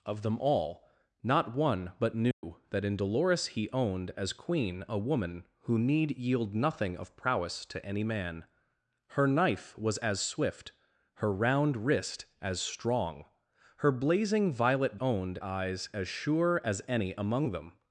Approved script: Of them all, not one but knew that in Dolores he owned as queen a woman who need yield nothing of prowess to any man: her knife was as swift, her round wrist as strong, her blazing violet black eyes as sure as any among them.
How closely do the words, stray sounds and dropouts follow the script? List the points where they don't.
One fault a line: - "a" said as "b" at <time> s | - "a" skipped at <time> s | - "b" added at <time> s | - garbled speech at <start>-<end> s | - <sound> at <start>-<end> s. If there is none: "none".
- dropout at 2.3-2.4 s
- "black" said as "owned" at 15.0 s